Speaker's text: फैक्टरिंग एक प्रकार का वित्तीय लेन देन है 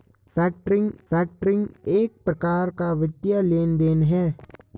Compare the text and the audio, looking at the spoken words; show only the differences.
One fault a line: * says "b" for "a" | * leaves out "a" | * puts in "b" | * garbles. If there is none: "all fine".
* puts in "फैक्टरिंग"